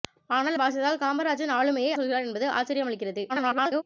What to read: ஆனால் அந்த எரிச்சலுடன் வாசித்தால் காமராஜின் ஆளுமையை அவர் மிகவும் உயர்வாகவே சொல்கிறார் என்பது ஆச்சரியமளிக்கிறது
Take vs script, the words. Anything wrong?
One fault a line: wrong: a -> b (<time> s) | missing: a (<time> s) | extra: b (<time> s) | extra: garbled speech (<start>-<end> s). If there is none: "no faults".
missing: அந்த எரிச்சலுடன் (0.6 s)
missing: அவர் மிகவும் உயர்வாகவே (1.9 s)
extra: garbled speech (3.3-3.8 s)